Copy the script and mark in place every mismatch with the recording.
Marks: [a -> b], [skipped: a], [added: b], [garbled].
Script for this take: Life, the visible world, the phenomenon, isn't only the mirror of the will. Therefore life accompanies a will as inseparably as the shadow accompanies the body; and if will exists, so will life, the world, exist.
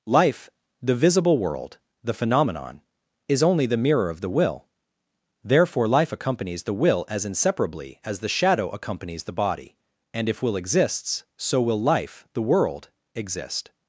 Life, the visible world, the phenomenon, [isn't -> is] only the mirror of the will. Therefore life accompanies [a -> the] will as inseparably as the shadow accompanies the body; and if will exists, so will life, the world, exist.